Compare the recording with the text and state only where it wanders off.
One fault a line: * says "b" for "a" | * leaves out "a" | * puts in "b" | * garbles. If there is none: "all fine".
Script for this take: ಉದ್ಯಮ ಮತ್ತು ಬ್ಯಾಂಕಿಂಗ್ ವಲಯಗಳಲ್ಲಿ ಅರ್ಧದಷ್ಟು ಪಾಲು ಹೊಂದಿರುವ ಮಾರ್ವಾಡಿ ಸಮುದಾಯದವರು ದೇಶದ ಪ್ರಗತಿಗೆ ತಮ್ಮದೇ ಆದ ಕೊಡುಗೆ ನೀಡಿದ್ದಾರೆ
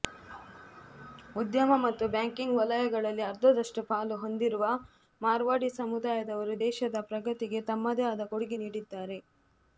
all fine